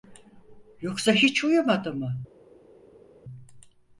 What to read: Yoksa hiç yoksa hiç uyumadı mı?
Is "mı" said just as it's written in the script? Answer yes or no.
yes